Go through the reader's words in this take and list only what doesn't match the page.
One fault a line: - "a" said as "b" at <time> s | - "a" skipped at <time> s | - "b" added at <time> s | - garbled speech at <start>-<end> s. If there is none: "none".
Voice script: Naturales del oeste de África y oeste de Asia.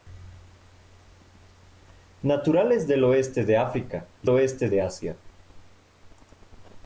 none